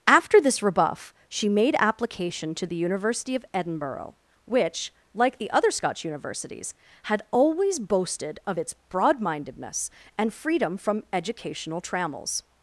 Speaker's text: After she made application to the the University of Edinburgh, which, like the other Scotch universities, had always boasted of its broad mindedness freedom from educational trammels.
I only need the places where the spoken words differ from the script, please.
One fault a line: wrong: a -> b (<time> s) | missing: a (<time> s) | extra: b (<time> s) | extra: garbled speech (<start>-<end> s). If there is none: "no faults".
extra: this rebuff (0.4 s)
missing: the (2.8 s)
extra: and (10.2 s)